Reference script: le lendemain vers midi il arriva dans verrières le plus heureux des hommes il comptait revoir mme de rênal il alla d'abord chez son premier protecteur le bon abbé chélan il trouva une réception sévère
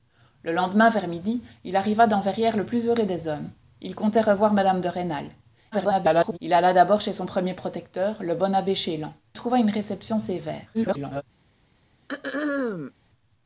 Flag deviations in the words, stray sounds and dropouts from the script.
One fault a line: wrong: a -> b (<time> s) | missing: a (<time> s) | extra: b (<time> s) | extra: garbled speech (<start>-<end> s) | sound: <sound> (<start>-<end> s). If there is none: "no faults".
extra: garbled speech (5.7-6.4 s)
missing: il (9.1 s)
extra: garbled speech (10.7-11.2 s)
sound: throat clearing (12.1-12.9 s)